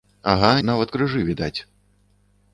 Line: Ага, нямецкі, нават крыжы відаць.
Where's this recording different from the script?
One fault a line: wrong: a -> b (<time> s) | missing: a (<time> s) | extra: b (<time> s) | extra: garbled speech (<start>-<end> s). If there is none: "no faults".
missing: нямецкі (0.5 s)